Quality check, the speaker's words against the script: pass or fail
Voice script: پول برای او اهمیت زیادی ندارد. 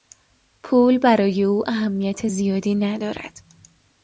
pass